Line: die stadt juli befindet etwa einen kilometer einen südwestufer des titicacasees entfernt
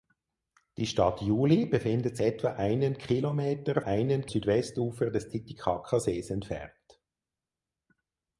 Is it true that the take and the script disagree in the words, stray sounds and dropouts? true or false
false